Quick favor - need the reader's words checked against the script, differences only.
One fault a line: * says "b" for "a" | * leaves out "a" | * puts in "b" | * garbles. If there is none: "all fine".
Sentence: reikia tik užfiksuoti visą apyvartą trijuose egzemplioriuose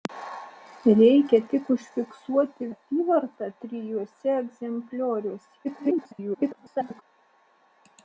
* leaves out "visą"
* garbles